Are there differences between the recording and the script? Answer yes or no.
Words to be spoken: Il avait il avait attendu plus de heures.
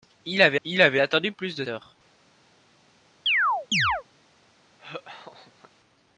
no